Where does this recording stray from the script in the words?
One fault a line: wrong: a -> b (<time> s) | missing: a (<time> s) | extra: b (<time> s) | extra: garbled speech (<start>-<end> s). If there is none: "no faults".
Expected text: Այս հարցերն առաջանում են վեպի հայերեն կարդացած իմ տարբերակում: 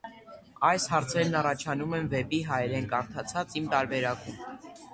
no faults